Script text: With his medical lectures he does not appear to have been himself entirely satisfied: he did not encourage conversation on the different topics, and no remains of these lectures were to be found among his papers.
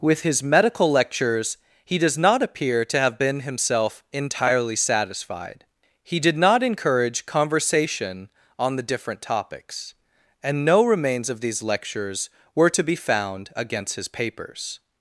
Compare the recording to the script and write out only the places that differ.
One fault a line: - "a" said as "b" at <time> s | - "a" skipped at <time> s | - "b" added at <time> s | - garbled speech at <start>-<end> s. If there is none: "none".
- "among" said as "against" at 13.5 s